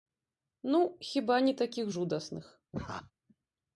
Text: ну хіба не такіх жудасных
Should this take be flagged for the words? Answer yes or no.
no